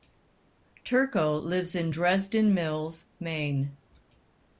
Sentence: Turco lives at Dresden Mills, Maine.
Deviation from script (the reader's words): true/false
true